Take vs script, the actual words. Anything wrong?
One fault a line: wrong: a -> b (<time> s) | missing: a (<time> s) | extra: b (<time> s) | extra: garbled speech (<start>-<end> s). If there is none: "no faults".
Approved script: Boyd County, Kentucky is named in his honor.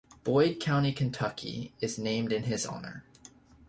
no faults